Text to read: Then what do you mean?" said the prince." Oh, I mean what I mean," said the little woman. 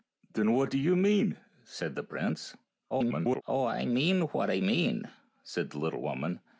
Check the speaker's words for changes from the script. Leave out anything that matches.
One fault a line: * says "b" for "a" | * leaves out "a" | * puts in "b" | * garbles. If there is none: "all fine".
* garbles